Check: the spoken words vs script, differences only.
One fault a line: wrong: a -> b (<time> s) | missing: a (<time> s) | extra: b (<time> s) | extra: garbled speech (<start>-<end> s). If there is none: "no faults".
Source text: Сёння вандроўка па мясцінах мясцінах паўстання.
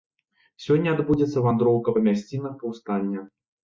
extra: адбудзецца (0.9 s)
missing: мясцінах (2.6 s)